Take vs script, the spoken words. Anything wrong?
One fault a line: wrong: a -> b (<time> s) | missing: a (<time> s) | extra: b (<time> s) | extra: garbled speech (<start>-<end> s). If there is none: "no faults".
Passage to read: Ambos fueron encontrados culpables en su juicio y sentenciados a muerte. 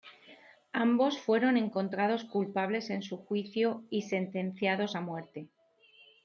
no faults